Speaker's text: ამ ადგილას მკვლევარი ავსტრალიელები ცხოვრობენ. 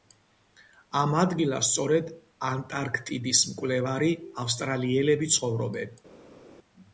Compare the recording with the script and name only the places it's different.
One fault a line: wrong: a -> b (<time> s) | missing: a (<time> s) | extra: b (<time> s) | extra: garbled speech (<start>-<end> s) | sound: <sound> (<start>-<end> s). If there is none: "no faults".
extra: სწორედ ანტარქტიდის (1.7 s)